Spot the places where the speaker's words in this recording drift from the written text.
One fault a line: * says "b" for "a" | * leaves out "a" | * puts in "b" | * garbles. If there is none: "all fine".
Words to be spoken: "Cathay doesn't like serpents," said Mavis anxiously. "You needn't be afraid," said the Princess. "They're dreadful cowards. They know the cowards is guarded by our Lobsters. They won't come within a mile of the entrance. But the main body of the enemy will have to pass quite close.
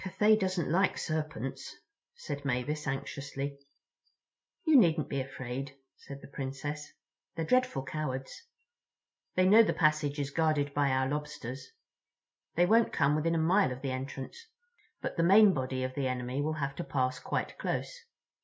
* says "passage" for "cowards"